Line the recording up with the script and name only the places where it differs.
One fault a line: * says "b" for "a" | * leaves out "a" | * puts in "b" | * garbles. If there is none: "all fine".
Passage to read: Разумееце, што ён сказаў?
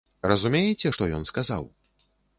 all fine